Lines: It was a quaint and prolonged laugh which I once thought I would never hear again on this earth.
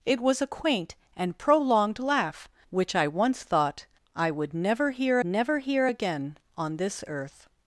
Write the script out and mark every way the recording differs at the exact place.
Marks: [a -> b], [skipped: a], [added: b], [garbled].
It was a quaint and prolonged laugh which I once thought I would never hear [added: never hear] again on this earth.